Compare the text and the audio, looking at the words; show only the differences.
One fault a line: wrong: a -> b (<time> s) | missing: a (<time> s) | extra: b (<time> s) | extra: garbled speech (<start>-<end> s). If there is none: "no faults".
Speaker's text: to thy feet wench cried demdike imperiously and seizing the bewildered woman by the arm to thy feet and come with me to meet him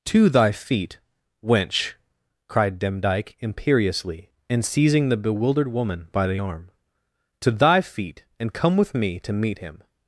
no faults